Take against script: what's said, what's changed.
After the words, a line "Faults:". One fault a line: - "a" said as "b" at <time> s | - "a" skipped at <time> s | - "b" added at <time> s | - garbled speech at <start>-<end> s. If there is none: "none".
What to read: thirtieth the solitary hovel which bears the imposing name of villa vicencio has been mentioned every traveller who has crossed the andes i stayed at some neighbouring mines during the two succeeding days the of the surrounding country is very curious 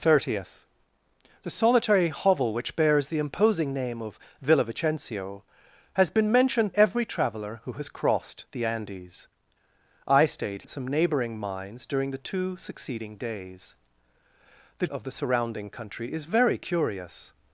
thirtieth the solitary hovel which bears the imposing name of villa vicencio has been mentioned every traveller who has crossed the andes i stayed at some neighbouring mines during the two succeeding days the of the surrounding country is very curious
Faults:
none